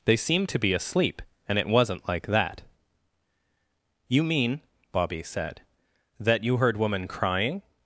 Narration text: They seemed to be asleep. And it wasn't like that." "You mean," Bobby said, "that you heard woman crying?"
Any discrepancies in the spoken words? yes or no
no